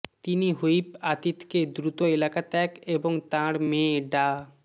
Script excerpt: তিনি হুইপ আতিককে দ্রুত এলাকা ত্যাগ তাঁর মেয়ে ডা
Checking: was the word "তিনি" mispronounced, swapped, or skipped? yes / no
no